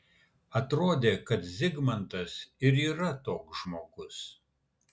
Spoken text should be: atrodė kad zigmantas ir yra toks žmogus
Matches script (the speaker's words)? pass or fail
pass